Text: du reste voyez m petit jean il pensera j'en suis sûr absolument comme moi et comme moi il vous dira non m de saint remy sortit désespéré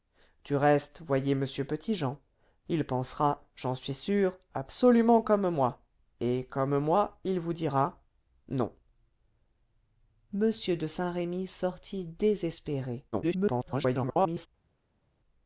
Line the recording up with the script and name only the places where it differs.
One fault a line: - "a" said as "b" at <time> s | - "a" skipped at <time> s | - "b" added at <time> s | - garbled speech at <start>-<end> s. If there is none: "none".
- garbled speech at 13.1-14.5 s